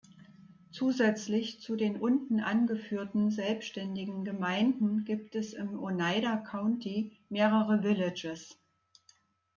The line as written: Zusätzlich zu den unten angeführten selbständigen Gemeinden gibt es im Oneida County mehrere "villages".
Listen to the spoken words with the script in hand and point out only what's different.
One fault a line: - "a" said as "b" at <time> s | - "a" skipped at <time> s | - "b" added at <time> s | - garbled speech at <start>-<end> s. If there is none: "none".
none